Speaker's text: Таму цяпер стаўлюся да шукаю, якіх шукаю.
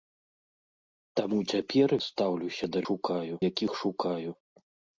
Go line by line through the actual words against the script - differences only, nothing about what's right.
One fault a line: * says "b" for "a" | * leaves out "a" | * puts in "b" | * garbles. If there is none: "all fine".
all fine